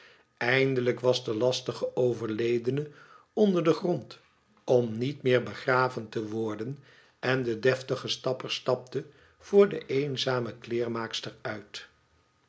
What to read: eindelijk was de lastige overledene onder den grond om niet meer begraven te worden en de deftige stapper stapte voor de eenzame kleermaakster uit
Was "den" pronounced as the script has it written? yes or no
yes